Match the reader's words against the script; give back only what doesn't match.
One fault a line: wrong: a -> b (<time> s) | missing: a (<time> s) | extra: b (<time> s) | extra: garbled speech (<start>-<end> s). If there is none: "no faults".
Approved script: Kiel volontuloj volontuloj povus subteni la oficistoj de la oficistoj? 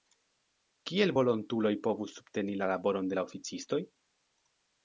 missing: volontuloj (1.7 s)
wrong: oficistoj -> laboron (2.7 s)